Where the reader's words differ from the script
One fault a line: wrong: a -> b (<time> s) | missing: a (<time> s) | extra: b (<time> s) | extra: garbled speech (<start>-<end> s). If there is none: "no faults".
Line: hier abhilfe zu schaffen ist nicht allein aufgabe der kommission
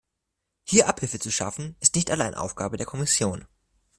no faults